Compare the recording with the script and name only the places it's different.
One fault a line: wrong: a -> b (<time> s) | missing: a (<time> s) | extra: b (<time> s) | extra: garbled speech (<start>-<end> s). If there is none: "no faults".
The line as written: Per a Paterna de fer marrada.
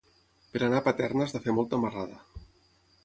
extra: anar (0.7 s)
extra: has (1.3 s)
extra: molta (1.5 s)